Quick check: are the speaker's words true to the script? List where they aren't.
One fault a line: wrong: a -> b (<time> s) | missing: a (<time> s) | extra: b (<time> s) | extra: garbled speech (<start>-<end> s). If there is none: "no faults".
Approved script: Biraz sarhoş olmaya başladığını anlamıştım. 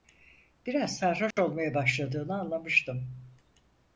no faults